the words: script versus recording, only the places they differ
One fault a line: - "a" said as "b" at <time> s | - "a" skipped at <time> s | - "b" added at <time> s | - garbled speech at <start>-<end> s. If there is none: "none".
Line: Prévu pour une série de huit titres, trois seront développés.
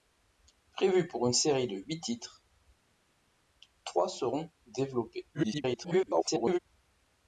- garbled speech at 5.3-6.6 s